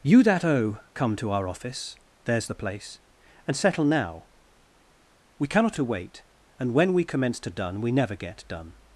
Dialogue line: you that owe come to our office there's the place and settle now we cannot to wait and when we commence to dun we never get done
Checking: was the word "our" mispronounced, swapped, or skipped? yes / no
no